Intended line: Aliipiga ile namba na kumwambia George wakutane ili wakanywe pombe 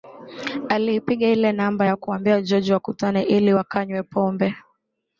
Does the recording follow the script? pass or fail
pass